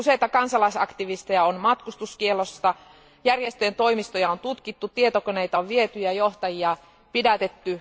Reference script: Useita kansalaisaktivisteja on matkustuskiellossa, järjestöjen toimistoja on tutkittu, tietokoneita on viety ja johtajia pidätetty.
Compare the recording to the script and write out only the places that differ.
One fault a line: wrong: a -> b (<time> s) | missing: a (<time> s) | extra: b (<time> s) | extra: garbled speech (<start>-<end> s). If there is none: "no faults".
no faults